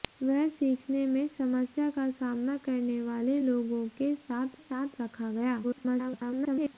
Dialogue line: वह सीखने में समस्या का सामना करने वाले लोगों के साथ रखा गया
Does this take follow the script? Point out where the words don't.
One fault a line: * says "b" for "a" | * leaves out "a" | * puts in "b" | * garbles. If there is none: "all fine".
* puts in "साथ"
* garbles